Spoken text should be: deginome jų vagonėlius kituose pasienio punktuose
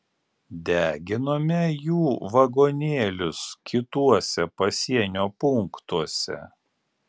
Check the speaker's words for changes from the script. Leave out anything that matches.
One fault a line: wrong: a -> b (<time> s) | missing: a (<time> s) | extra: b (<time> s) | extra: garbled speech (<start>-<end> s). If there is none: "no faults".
no faults